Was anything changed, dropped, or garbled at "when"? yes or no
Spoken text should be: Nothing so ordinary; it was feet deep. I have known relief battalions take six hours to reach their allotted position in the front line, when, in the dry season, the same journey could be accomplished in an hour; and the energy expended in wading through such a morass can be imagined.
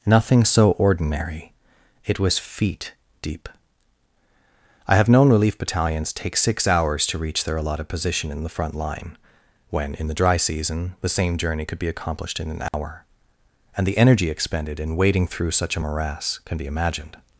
no